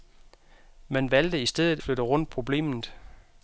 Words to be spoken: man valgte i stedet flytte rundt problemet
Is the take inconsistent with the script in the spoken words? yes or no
no